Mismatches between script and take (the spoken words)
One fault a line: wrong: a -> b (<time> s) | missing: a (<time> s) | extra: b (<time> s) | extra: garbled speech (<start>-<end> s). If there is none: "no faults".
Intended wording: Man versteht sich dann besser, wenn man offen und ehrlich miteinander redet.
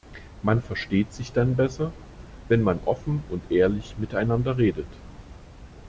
no faults